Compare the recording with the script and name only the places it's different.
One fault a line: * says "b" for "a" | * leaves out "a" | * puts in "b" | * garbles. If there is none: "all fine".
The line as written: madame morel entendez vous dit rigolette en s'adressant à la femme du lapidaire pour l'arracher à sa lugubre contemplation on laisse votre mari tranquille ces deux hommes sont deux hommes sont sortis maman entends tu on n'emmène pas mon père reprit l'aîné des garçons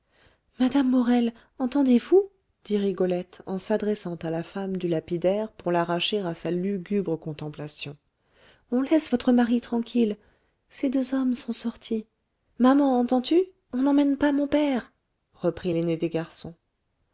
* leaves out "deux hommes sont"